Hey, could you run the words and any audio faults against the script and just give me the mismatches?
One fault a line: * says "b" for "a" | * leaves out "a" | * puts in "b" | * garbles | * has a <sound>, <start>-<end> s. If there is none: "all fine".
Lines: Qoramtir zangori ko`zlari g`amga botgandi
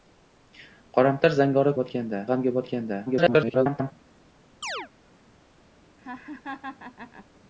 * says "botgandi" for "ko`zlari"
* garbles
* has a chirp, 4.6-4.9 s
* has a laugh, 6.0-7.3 s